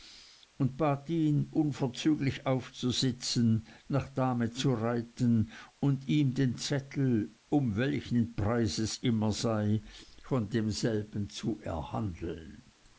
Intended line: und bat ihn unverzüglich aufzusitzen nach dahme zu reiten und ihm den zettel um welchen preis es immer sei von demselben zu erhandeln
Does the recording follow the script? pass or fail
pass